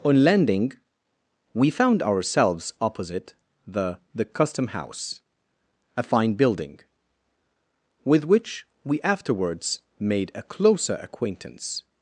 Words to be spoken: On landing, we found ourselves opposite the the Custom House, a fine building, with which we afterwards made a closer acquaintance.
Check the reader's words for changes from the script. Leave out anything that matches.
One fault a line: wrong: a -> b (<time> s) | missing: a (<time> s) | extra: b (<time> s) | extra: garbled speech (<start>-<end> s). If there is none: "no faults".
no faults